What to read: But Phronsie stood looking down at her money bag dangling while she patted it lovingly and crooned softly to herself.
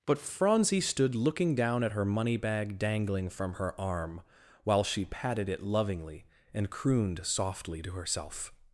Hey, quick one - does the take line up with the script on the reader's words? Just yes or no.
no